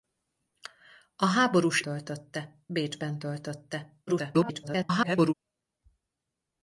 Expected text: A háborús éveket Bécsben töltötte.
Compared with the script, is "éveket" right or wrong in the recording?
wrong